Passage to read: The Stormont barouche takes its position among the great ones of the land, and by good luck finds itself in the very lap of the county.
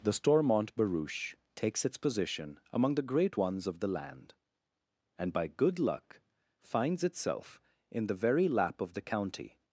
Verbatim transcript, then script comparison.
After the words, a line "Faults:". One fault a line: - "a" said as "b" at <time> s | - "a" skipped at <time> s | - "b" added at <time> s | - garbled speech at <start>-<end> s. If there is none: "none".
The Stormont barouche takes its position among the great ones of the land, and by good luck finds itself in the very lap of the county.
Faults:
none